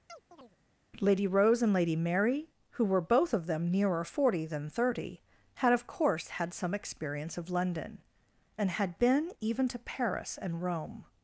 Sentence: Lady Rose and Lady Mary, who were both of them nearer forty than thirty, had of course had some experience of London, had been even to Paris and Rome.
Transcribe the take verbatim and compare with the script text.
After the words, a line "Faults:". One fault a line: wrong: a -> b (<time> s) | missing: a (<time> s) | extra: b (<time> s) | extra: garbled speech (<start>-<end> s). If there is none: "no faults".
Lady Rose and Lady Mary, who were both of them nearer forty than thirty, had of course had some experience of London, and had been even to Paris and Rome.
Faults:
extra: and (8.6 s)